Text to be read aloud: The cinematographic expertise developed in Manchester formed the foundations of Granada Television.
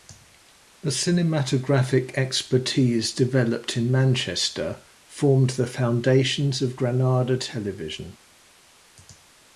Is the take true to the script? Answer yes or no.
yes